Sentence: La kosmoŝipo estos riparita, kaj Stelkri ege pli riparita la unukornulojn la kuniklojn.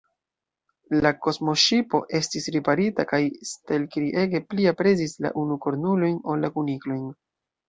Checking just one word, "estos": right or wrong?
wrong